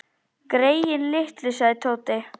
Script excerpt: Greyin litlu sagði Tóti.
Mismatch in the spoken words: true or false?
false